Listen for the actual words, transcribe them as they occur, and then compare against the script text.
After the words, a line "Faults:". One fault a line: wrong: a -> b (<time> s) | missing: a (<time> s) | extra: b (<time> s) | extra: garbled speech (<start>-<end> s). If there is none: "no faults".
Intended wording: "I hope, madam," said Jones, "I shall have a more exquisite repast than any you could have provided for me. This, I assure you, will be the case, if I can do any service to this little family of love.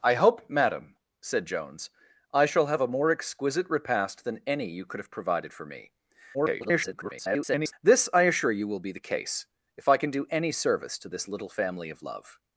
"I hope, madam," said Jones, "I shall have a more exquisite repast than any you could have provided for me. [garbled] This, I assure you, will be the case, if I can do any service to this little family of love.
Faults:
extra: garbled speech (6.3-7.7 s)